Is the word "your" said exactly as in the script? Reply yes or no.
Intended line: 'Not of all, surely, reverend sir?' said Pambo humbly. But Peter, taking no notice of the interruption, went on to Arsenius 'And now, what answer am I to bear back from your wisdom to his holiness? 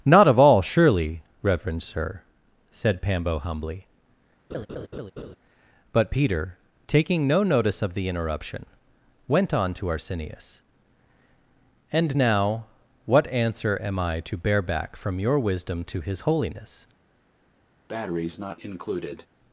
yes